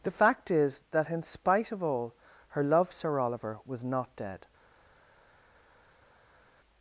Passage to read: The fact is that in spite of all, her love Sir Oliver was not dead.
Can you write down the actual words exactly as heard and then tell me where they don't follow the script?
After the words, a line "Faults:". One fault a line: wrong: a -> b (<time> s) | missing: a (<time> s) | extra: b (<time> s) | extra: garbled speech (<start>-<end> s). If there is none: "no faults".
The fact is that in spite of all, her love Sir Oliver was not dead.
Faults:
no faults